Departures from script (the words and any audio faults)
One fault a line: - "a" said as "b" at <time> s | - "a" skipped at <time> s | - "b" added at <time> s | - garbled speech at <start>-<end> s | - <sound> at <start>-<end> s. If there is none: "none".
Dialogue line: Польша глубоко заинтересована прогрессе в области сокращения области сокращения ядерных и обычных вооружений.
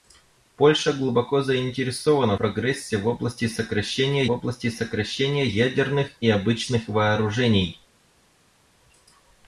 none